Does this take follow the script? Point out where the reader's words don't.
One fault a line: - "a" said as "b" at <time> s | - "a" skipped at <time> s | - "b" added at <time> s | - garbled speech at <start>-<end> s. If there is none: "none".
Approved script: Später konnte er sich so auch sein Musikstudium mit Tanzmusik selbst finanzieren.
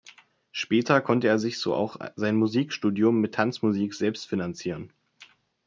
none